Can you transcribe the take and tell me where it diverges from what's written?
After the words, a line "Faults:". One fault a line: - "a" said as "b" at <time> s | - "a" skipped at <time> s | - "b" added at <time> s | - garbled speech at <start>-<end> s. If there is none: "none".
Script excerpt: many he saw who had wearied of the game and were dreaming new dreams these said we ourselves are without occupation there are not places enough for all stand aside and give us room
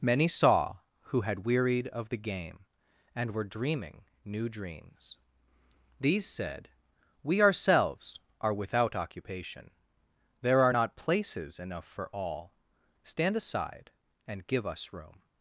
many saw who had wearied of the game and were dreaming new dreams these said we ourselves are without occupation there are not places enough for all stand aside and give us room
Faults:
- "he" skipped at 0.3 s